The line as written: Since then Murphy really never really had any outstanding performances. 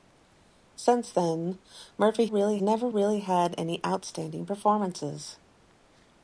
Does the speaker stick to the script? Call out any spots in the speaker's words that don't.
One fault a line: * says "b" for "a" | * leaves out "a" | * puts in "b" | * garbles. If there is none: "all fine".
all fine